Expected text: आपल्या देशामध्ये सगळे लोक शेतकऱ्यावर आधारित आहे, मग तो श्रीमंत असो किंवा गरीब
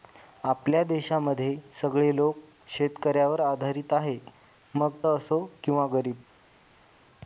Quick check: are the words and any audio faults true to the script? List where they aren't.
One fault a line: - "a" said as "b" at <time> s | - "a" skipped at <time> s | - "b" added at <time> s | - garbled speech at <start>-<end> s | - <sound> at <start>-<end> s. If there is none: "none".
- "तो श्रीमंत" skipped at 5.0 s